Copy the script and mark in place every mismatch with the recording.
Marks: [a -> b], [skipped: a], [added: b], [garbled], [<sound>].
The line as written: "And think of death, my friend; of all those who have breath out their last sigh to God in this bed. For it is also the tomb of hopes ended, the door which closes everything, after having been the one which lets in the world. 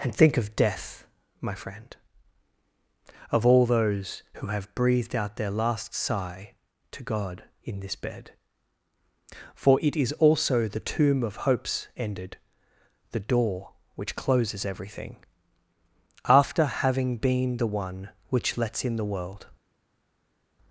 "And think of death, my friend; of all those who have [breath -> breathed] out their last sigh to God in this bed. For it is also the tomb of hopes ended, the door which closes everything, after having been the one which lets in the world.